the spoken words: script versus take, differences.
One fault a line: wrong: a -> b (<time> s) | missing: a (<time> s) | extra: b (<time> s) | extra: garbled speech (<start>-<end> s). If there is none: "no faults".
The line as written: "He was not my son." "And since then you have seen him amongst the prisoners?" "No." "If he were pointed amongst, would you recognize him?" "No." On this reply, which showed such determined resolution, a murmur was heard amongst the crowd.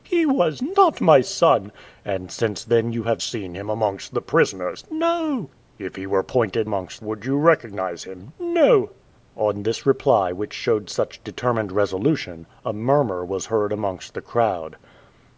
no faults